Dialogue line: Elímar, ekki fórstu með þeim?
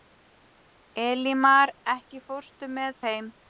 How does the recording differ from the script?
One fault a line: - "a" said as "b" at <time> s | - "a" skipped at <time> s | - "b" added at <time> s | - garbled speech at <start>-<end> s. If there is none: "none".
none